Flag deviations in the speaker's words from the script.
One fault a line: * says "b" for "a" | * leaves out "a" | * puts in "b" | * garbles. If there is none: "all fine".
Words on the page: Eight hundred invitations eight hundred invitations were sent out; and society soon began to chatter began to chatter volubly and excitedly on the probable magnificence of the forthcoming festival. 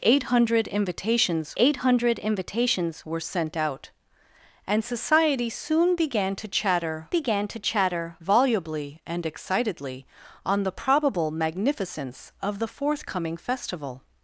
all fine